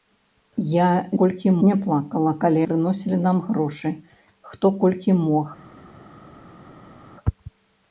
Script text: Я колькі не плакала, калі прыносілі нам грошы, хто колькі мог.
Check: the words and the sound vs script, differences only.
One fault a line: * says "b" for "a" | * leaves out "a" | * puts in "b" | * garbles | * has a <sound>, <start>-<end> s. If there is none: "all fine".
all fine